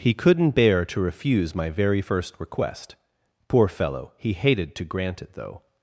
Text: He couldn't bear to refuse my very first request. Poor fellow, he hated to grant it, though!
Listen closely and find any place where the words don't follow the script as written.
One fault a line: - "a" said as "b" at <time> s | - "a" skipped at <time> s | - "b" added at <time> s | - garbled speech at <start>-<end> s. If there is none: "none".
none